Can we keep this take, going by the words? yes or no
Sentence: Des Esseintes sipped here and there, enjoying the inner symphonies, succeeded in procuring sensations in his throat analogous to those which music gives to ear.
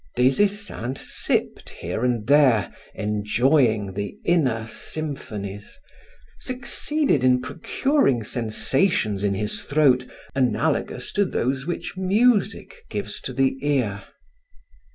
no